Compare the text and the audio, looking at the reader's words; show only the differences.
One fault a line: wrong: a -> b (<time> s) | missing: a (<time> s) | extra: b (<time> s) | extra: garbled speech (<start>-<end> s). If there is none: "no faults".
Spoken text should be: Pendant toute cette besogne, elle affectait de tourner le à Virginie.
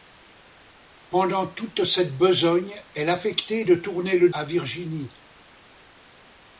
no faults